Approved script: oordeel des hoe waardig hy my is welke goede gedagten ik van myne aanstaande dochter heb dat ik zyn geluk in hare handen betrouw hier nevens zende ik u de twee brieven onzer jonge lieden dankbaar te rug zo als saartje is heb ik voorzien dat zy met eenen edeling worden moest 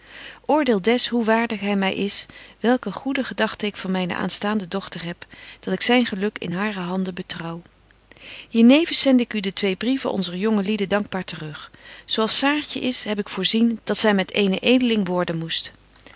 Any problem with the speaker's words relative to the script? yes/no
no